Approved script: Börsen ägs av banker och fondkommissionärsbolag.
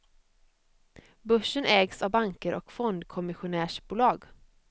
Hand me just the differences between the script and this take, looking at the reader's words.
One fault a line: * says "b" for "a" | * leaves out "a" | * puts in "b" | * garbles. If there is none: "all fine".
all fine